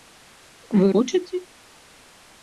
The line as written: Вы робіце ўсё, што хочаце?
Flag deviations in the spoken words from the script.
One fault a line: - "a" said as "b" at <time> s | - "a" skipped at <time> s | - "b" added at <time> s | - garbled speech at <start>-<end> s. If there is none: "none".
- "робіце ўсё што" skipped at 0.9 s